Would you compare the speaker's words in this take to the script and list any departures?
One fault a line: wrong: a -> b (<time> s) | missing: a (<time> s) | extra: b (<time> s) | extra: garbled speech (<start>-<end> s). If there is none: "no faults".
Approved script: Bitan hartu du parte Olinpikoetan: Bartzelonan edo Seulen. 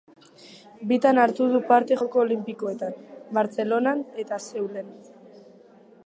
extra: Joko (2.0 s)
wrong: edo -> eta (4.2 s)